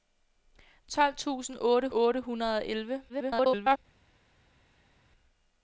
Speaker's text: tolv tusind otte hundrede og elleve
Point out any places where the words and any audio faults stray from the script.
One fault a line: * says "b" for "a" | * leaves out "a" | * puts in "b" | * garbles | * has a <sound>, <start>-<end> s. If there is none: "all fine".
* puts in "otte"
* garbles